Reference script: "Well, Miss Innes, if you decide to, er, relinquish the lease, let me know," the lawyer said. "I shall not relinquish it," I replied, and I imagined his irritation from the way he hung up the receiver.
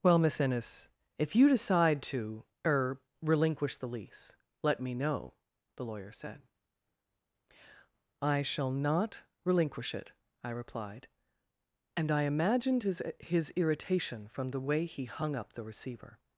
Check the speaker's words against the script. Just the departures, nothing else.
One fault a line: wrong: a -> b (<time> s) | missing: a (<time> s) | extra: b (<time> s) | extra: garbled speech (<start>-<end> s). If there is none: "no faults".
extra: his (13.2 s)